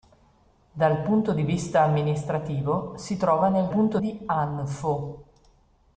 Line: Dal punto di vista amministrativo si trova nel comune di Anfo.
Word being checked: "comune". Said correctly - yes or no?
no